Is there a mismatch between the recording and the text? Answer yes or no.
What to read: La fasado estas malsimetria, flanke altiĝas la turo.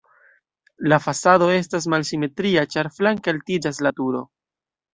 yes